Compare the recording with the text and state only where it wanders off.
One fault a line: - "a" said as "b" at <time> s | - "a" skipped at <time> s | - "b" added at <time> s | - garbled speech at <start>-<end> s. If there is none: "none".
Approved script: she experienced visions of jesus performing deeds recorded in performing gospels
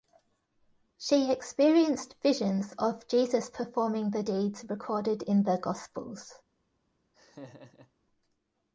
- "the" added at 4.1 s
- "performing" said as "the" at 5.4 s